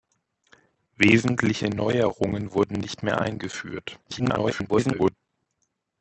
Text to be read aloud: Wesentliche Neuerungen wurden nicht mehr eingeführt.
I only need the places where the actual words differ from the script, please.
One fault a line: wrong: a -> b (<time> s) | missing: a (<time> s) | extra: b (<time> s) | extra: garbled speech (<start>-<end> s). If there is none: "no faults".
extra: garbled speech (4.1-5.2 s)